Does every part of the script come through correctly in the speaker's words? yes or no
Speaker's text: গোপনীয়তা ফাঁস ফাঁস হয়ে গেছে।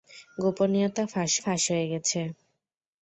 yes